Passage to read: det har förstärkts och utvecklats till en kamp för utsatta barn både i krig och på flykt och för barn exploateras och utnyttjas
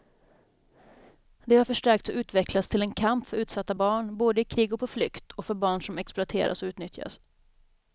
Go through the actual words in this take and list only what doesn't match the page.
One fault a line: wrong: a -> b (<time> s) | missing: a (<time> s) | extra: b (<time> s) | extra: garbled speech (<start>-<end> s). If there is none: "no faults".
extra: som (5.8 s)